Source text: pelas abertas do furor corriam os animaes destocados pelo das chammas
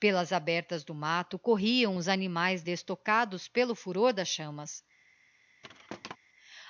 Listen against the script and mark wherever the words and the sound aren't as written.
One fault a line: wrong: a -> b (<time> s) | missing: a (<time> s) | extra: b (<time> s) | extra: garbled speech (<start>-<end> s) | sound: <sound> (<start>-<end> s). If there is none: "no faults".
wrong: furor -> matto (0.9 s)
extra: furor (3.7 s)
sound: thud (5.6-6.2 s)